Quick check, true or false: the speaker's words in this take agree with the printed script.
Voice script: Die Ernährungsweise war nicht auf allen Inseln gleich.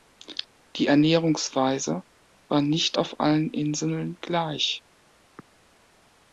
true